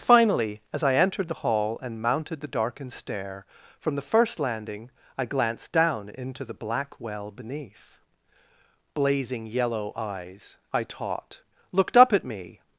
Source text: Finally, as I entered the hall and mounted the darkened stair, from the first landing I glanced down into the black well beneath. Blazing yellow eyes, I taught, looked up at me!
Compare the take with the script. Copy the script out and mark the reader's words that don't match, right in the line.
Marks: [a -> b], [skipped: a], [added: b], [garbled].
Finally, as I entered the hall and mounted the darkened stair, from the first landing I glanced down into the black well beneath. Blazing yellow eyes, I taught, looked up at me!